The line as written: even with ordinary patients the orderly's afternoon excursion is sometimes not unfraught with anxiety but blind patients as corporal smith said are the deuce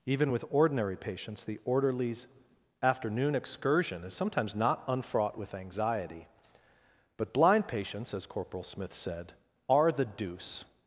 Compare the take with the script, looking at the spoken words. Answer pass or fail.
pass